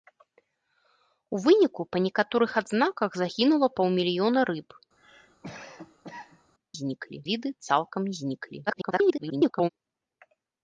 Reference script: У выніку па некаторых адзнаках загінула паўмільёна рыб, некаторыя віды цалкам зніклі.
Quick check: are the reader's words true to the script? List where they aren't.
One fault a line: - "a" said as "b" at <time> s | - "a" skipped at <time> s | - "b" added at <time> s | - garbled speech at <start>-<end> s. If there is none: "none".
- "некаторыя" said as "зніклі" at 6.8 s
- garbled speech at 8.7-9.7 s